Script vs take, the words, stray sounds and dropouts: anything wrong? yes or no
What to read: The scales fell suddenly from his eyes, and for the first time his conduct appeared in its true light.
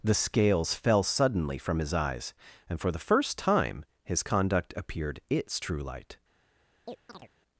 yes